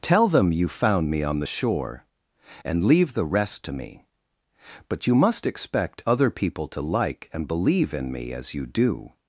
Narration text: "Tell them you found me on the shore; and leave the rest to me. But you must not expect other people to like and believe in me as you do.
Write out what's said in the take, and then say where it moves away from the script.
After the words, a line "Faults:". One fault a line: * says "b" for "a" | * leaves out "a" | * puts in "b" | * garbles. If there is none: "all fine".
"Tell them you found me on the shore; and leave the rest to me. But you must expect other people to like and believe in me as you do.
Faults:
* leaves out "not"